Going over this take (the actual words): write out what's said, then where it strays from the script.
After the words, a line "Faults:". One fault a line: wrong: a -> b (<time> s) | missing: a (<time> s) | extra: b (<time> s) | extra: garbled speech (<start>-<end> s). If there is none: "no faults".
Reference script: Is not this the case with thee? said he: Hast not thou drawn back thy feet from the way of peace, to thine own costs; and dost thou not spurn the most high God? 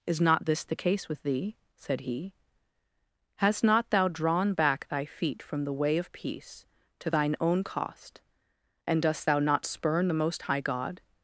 Is not this the case with thee? said he: Hast not thou drawn back thy feet from the way of peace, to thine own cost; and dost thou not spurn the most high God?
Faults:
wrong: costs -> cost (7.6 s)